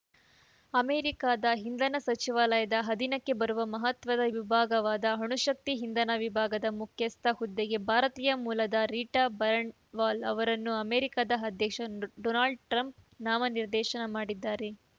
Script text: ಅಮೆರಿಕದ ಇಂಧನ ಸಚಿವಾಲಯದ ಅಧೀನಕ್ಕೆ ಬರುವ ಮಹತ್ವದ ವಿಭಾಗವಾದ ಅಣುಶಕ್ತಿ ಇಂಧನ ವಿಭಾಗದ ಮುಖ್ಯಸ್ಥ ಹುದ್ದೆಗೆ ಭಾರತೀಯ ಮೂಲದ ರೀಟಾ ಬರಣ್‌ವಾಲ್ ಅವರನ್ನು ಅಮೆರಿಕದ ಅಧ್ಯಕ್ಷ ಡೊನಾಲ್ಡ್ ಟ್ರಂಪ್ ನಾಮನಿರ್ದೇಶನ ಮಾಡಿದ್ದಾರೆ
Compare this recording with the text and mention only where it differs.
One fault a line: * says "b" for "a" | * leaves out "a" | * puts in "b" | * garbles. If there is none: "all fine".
all fine